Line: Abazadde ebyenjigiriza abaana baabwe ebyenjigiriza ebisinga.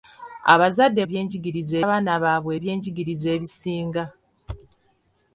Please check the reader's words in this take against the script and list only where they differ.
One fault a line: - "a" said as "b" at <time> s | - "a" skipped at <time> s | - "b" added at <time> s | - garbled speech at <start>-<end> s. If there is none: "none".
none